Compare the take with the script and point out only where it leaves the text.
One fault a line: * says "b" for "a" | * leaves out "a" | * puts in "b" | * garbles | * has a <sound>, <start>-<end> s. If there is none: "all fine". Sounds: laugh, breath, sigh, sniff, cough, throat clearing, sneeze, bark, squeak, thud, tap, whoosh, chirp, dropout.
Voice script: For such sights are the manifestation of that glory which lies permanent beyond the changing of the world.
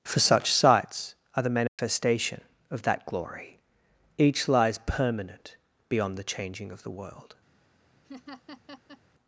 * has a dropout, 1.7-1.8 s
* says "each" for "which"
* has a laugh, 8.0-9.0 s